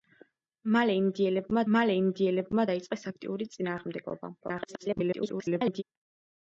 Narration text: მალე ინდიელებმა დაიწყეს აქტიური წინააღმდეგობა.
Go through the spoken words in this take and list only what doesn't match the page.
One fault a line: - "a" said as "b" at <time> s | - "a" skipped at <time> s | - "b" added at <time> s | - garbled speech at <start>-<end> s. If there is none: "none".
- "მალე ინდიელებმა" added at 1.7 s
- garbled speech at 4.4-5.8 s